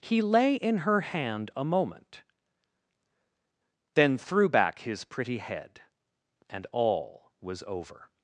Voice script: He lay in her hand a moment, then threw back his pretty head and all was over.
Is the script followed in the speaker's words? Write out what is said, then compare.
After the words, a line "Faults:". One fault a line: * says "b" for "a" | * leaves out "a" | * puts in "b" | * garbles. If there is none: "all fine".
He lay in her hand a moment, then threw back his pretty head and all was over.
Faults:
all fine